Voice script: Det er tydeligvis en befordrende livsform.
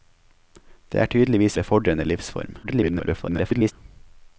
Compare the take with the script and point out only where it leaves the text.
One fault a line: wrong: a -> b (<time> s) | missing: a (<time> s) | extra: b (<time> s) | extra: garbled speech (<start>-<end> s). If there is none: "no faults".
missing: en (1.6 s)
extra: garbled speech (2.6-3.7 s)